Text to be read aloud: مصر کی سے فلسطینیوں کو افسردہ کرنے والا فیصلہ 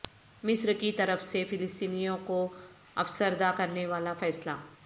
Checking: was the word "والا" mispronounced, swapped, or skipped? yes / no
no